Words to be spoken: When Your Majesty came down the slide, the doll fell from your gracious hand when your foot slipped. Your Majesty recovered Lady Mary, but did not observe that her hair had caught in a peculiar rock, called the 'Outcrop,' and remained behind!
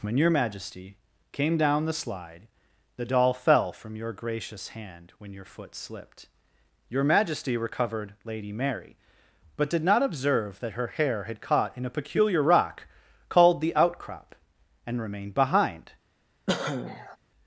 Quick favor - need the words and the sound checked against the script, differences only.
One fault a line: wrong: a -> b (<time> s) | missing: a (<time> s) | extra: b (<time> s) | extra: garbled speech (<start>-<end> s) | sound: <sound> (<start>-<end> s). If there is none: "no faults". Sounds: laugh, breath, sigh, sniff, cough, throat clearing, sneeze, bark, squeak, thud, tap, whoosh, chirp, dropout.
sound: cough (16.5-17.2 s)